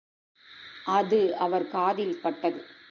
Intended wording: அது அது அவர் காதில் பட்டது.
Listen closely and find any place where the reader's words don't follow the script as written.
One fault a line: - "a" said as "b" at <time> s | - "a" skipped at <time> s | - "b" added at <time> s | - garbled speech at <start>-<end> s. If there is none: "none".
- "அது" skipped at 1.4 s